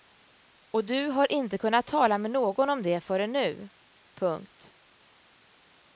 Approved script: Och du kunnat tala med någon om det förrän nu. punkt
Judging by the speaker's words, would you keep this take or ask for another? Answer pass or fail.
fail